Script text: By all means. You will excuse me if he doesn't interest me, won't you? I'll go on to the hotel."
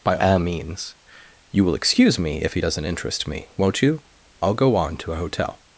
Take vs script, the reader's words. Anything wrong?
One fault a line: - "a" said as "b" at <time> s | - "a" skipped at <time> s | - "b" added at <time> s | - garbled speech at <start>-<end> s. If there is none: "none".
- "the" said as "a" at 5.1 s